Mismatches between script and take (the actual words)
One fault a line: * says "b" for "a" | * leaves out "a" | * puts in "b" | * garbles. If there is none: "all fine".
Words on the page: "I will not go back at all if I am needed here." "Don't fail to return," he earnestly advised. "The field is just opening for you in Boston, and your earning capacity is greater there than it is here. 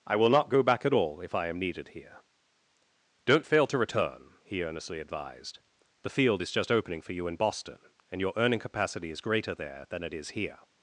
all fine